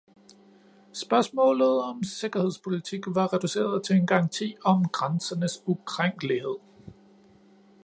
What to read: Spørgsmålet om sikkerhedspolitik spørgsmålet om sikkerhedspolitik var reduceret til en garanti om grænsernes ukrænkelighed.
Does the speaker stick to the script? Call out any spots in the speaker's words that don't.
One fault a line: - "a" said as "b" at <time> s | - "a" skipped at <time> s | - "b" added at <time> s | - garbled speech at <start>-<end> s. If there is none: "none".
- "spørgsmålet om sikkerhedspolitik" skipped at 3.0 s